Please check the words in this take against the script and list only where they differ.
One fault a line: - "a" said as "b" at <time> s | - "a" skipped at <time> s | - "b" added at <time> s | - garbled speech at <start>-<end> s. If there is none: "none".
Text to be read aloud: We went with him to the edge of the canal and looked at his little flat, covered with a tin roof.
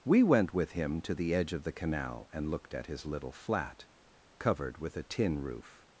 none